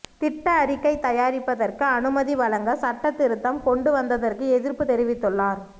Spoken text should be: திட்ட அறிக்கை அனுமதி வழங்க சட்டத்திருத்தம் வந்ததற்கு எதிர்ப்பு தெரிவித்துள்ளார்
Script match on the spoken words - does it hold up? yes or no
no